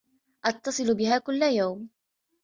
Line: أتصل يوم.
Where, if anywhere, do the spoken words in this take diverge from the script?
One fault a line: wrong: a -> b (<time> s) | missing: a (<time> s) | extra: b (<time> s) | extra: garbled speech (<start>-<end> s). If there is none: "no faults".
extra: بها كل (1.0 s)